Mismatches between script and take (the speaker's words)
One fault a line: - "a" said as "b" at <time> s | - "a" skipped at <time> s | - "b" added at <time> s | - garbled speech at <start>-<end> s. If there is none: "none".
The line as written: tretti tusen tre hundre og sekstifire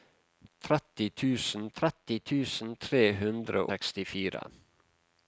- "tretti tusen" added at 1.8 s
- "og" skipped at 3.7 s